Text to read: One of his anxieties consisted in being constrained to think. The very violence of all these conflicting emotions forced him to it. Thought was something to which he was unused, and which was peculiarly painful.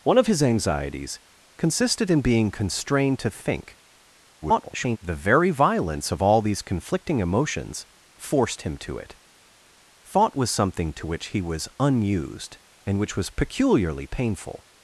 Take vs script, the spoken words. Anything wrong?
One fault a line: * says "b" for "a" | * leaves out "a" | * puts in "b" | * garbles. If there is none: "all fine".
* garbles